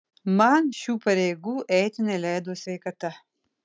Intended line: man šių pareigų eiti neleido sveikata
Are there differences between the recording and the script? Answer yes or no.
no